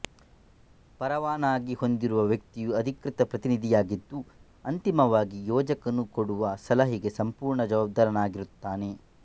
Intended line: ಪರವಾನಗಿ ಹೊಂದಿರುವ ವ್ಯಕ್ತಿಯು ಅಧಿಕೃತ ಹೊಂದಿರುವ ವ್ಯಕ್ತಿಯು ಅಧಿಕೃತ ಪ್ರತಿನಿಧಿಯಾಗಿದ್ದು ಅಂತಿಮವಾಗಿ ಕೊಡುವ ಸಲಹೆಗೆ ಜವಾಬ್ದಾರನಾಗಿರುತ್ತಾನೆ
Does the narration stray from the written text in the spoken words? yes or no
yes